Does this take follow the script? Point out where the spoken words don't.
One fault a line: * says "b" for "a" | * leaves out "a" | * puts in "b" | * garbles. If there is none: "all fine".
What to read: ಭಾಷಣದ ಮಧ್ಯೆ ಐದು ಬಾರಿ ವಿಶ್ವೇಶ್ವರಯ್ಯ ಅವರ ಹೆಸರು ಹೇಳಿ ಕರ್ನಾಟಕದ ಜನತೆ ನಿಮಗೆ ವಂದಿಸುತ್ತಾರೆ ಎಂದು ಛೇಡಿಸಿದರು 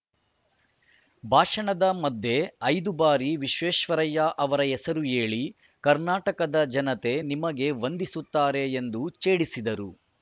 all fine